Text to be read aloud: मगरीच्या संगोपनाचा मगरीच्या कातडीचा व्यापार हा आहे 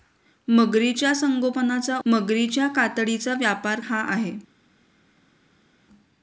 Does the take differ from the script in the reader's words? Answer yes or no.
no